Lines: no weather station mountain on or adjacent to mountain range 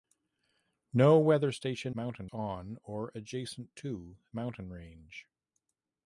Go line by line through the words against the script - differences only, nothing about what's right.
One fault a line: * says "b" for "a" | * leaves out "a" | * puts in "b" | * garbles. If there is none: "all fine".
all fine